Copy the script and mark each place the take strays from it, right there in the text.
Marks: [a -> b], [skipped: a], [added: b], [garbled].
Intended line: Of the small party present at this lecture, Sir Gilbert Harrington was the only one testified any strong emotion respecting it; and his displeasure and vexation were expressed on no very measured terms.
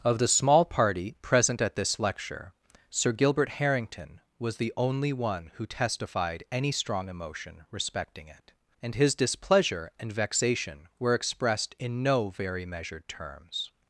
Of the small party present at this lecture, Sir Gilbert Harrington was the only one [added: who] testified any strong emotion respecting it; and his displeasure and vexation were expressed [on -> in] no very measured terms.